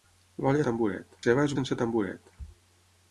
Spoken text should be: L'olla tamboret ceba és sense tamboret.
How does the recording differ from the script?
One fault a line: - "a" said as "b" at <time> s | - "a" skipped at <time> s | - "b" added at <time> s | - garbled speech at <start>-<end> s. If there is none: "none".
none